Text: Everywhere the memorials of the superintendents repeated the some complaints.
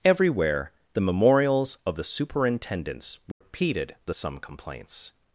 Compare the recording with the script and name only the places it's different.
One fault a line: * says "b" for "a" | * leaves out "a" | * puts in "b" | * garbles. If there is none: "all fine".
all fine